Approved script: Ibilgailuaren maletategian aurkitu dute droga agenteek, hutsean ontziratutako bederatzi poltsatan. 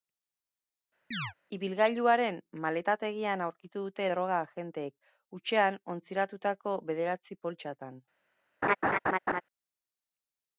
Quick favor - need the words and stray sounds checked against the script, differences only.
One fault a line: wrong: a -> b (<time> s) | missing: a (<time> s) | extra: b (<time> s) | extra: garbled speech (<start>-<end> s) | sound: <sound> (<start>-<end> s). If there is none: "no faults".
sound: chirp (1.1-1.3 s)
sound: laugh (8.6-9.4 s)